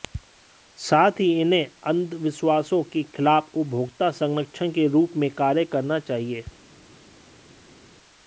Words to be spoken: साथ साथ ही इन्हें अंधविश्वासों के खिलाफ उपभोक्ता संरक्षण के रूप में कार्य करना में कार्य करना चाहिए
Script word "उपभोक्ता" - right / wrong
right